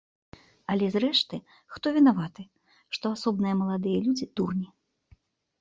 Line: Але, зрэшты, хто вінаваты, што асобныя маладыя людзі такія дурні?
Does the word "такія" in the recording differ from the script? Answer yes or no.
yes